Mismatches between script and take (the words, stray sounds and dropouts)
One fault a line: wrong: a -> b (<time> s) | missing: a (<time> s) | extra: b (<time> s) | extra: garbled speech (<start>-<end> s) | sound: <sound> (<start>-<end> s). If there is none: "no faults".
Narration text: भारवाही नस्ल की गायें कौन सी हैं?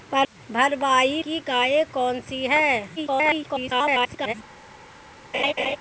missing: नस्ल (1.2 s)
extra: garbled speech (3.0-4.3 s)
sound: laugh (5.3-5.8 s)